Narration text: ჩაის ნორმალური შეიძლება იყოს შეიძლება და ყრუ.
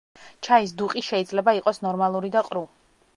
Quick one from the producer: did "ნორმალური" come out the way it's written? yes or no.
no